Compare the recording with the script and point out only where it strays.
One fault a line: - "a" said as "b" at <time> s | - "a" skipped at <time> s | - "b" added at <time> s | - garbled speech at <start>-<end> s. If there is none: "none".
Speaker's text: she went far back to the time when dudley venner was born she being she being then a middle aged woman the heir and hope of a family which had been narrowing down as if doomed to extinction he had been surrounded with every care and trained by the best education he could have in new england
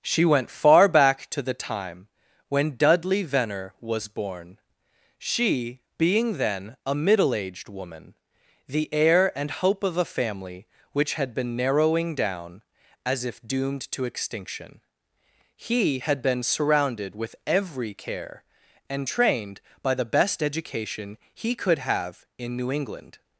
- "she being" skipped at 6.4 s